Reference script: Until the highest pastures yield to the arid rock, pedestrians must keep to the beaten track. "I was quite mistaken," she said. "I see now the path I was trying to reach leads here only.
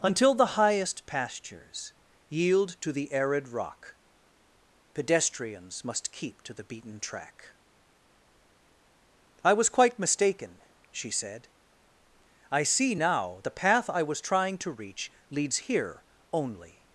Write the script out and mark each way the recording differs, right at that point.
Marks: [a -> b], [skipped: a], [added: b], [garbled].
Until the highest pastures yield to the arid rock, pedestrians must keep to the beaten track. "I was quite mistaken," she said. "I see now the path I was trying to reach leads here only.